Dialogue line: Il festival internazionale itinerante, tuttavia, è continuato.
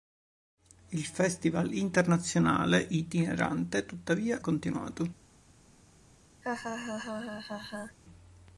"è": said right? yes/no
no